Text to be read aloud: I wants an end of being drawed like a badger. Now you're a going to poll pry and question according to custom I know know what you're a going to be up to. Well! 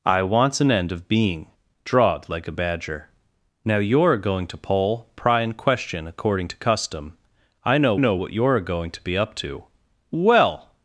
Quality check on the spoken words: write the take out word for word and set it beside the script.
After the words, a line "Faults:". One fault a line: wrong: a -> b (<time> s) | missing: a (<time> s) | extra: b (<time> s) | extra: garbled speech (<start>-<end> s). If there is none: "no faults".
I wants an end of being drawed like a badger. Now you're a going to poll pry and question according to custom I know know what you're a going to be up to. Well!
Faults:
no faults